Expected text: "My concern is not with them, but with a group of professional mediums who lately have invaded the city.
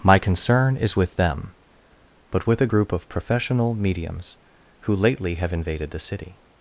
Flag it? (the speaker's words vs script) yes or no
yes